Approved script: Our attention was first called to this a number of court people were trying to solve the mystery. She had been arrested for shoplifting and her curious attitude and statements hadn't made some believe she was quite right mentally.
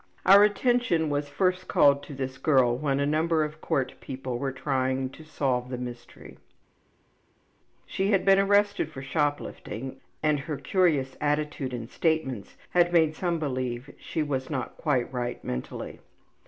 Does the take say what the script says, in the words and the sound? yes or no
no